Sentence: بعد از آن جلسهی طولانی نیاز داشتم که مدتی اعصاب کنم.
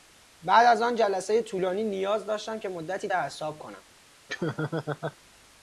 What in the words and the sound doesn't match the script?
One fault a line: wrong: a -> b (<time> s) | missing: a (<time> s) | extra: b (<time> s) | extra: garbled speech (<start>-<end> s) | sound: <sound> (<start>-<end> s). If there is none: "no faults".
sound: laugh (4.3-5.2 s)